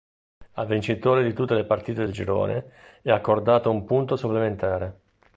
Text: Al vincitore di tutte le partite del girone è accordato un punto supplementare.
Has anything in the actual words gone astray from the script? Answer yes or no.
no